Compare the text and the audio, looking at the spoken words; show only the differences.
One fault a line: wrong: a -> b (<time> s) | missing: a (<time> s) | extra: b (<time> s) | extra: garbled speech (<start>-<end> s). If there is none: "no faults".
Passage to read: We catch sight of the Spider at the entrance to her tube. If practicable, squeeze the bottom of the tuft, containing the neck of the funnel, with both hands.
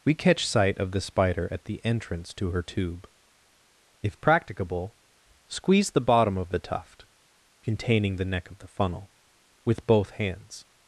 no faults